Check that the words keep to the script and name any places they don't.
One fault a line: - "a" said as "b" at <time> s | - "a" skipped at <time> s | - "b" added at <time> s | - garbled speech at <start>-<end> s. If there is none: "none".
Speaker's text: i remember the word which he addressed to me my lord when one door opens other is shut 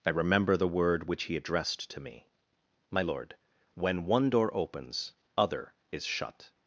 none